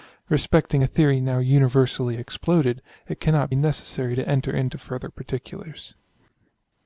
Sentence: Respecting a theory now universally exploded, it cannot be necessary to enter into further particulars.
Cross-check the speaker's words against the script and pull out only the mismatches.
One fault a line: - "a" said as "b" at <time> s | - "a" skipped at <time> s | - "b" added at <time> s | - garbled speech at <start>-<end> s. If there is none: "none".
- "be" skipped at 3.5 s